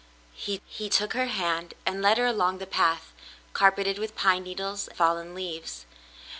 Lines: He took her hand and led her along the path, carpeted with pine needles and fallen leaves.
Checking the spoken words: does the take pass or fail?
fail